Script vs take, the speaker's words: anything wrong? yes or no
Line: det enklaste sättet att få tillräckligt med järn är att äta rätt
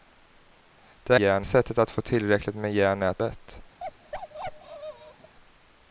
yes